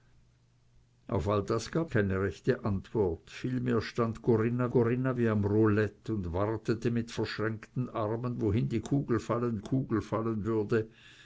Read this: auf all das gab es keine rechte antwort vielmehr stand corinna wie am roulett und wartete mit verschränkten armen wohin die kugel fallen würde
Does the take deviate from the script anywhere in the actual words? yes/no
yes